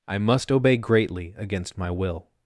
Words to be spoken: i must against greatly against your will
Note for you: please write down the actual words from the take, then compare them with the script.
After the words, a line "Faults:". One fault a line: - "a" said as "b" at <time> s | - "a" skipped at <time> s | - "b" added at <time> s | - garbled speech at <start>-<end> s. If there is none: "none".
i must obey greatly against my will
Faults:
- "against" said as "obey" at 0.5 s
- "your" said as "my" at 1.8 s